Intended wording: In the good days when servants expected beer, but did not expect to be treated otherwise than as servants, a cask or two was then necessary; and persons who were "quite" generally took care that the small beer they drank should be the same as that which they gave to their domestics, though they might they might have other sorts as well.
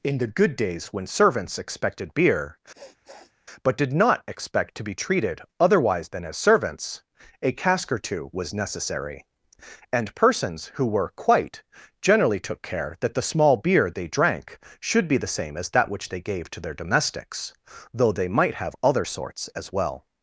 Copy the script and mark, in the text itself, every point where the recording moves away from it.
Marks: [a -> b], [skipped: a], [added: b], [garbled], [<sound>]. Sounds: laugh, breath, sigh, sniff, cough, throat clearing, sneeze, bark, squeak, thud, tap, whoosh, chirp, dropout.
In the good days when servants expected beer, [sniff] but did not expect to be treated otherwise than as servants, a cask or two was [skipped: then] necessary; and persons who were "quite" generally took care that the small beer they drank should be the same as that which they gave to their domestics, though they might [skipped: they might] have other sorts as well.